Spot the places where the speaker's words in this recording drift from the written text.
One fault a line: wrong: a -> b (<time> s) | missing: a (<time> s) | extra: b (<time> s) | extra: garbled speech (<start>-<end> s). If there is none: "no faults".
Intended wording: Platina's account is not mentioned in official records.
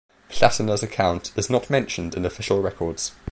no faults